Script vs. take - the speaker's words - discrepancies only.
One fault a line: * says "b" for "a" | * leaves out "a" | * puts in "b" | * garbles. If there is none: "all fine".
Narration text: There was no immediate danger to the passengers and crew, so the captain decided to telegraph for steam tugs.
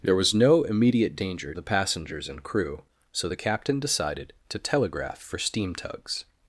* leaves out "to"